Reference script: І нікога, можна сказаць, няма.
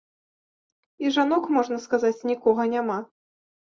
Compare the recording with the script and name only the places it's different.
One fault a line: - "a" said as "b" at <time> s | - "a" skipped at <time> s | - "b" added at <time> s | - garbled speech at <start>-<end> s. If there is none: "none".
- "нікога" said as "жанок" at 1.2 s
- "нікога" added at 2.3 s